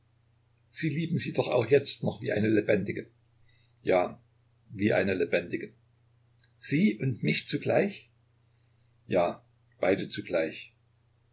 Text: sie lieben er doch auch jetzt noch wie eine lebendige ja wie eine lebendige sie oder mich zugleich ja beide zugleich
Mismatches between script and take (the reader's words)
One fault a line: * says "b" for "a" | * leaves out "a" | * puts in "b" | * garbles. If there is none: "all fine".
* says "sie" for "er"
* says "und" for "oder"